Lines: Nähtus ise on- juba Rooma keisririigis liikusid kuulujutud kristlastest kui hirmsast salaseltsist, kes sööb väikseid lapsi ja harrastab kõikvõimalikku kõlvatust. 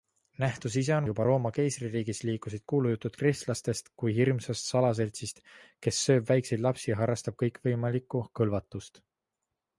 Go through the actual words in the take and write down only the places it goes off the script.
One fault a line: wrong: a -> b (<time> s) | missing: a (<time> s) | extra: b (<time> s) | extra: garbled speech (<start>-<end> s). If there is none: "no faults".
no faults